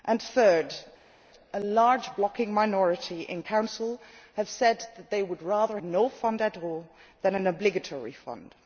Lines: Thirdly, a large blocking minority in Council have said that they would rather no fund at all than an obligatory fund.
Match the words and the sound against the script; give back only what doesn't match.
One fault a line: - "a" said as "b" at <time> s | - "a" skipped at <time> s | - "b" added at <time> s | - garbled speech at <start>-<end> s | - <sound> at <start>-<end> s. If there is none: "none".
none